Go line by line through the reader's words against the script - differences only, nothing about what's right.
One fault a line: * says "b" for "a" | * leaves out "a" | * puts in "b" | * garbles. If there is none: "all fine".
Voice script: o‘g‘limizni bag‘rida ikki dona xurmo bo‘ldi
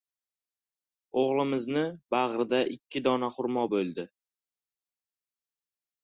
all fine